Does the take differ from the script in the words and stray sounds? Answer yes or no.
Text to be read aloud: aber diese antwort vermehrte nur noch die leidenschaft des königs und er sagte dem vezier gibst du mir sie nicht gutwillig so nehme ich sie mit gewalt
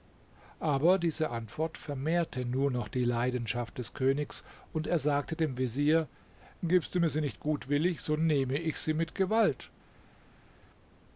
no